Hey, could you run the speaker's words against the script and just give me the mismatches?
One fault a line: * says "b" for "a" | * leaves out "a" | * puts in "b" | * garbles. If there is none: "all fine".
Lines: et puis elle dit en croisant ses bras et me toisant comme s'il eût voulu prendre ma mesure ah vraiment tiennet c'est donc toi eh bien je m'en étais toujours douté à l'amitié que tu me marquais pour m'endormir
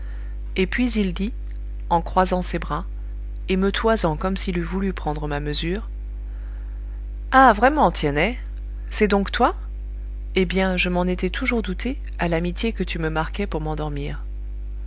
* says "il" for "elle"